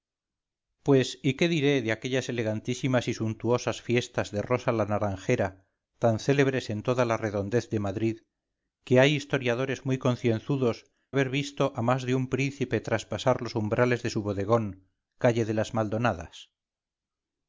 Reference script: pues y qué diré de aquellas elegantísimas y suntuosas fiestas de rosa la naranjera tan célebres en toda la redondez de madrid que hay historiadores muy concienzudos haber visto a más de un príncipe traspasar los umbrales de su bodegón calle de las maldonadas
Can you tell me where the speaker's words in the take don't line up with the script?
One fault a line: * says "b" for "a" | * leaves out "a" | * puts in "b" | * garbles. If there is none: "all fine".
all fine